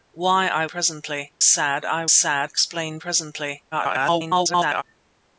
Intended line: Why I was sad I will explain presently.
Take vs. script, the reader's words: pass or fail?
fail